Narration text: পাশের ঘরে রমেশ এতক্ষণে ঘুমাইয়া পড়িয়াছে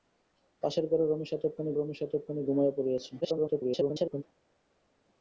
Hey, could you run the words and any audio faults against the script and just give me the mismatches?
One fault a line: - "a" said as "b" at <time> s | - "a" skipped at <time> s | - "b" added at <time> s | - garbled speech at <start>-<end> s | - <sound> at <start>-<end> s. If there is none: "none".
- "রমেশ এতক্ষণে" added at 1.7 s
- garbled speech at 3.2-4.2 s